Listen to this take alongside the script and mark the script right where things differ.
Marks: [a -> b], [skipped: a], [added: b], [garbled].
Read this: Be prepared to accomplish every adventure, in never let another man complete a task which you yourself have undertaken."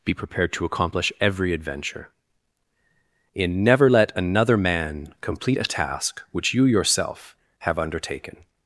Be prepared to accomplish every adventure, in never let another man complete a task which you yourself have undertaken."